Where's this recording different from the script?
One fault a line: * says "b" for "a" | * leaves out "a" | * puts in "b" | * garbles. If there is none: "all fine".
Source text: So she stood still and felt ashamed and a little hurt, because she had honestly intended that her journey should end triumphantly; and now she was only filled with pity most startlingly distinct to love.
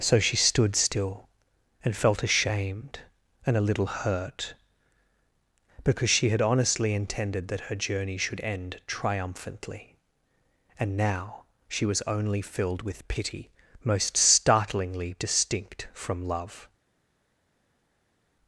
* says "from" for "to"